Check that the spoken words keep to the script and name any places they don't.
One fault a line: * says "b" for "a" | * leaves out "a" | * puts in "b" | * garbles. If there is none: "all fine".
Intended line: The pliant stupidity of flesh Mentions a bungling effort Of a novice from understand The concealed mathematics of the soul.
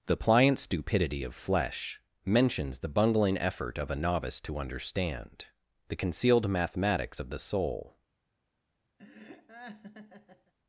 * says "the" for "a"
* says "to" for "from"